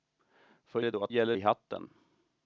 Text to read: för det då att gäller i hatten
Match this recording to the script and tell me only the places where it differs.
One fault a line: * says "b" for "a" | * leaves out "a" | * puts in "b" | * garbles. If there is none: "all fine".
all fine